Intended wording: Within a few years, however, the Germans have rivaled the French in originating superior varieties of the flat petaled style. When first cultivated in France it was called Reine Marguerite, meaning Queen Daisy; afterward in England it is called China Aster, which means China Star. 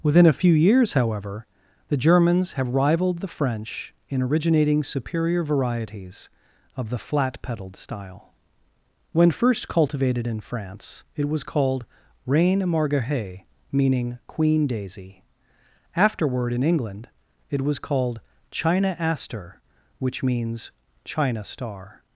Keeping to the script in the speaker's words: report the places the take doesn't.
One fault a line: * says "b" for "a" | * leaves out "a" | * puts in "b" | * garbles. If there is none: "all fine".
* says "was" for "is"